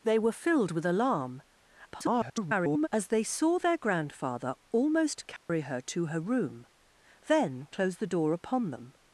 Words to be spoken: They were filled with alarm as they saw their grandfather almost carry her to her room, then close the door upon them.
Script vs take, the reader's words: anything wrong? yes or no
yes